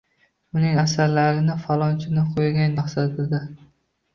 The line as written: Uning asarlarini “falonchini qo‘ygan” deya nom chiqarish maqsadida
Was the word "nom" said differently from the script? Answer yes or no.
yes